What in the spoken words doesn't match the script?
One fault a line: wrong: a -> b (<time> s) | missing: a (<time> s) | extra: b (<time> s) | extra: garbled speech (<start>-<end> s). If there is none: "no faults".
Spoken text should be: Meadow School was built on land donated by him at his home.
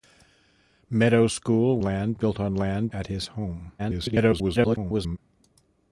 wrong: was -> land (1.8 s)
missing: donated by him (2.9 s)
extra: garbled speech (3.8-5.2 s)